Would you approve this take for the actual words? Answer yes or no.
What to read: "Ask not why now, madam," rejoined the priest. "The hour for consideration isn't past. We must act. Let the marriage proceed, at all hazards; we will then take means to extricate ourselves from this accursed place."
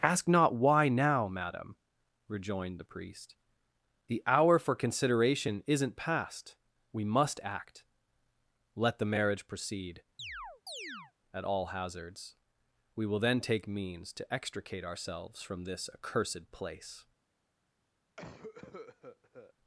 yes